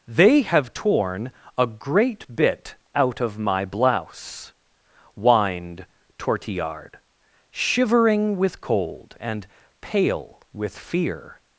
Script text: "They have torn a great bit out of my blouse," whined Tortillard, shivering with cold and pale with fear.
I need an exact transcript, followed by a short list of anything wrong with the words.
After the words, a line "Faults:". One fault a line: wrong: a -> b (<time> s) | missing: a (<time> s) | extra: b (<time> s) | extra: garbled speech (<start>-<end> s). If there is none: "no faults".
"They have torn a great bit out of my blouse," whined Tortillard, shivering with cold and pale with fear.
Faults:
no faults